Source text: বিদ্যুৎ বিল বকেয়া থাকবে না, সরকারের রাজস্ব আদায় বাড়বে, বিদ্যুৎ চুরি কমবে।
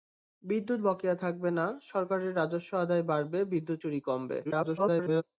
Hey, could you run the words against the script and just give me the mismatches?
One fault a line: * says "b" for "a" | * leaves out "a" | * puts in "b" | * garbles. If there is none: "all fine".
* leaves out "বিল"
* garbles